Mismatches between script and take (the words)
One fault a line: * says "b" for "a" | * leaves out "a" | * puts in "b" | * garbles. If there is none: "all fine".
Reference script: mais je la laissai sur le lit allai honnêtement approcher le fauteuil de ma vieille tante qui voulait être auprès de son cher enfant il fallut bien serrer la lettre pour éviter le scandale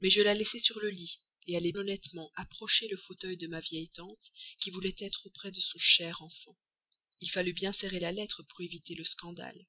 all fine